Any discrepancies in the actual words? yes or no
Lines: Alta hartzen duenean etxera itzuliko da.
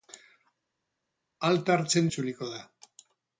yes